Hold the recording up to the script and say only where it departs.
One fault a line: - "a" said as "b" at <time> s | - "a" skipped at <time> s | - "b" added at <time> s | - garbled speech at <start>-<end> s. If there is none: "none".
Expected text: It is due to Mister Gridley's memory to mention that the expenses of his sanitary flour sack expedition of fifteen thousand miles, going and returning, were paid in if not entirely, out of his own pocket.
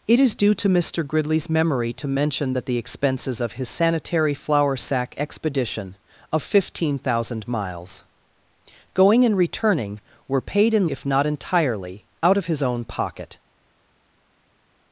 none